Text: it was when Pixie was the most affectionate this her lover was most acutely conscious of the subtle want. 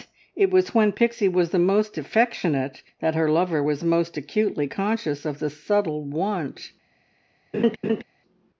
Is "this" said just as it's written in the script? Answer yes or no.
no